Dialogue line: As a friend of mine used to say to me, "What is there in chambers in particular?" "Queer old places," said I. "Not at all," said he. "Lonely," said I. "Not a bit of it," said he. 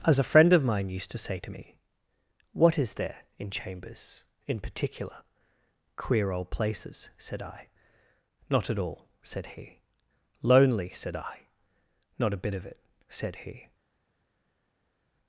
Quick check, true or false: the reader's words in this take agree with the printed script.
true